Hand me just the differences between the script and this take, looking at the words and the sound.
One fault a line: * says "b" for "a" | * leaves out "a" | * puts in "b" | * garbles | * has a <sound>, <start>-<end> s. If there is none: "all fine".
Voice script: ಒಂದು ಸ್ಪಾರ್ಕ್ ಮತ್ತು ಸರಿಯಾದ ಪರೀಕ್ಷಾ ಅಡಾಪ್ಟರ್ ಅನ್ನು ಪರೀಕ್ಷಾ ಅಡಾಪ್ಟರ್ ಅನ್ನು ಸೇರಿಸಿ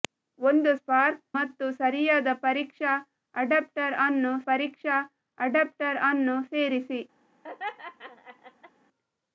* has a laugh, 7.4-8.7 s